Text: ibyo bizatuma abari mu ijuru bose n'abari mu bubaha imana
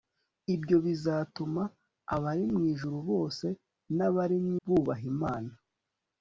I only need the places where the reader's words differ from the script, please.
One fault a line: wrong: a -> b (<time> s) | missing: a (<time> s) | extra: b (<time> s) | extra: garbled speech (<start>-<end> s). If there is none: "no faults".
no faults